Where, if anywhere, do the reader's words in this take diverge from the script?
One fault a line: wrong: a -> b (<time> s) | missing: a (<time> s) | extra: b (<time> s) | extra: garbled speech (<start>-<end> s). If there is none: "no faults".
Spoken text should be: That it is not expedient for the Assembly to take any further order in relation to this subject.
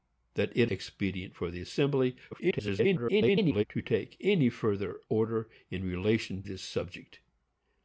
missing: is not (0.7 s)
extra: garbled speech (2.3-3.6 s)
missing: to (6.4 s)